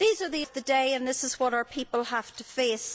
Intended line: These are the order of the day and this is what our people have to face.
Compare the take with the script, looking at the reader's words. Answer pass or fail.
fail